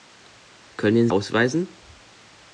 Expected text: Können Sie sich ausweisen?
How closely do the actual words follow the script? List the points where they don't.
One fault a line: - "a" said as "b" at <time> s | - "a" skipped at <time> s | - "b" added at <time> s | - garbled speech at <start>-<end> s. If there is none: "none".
- "Sie sich" skipped at 1.1 s